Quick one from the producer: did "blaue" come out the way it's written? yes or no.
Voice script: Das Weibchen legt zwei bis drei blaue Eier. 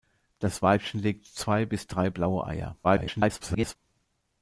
yes